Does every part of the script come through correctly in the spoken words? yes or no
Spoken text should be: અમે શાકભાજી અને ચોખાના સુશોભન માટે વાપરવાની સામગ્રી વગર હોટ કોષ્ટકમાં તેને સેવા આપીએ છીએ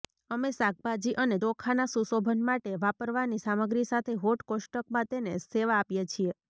no